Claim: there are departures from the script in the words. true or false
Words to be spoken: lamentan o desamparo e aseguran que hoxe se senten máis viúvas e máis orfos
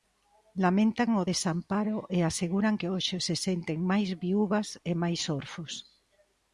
false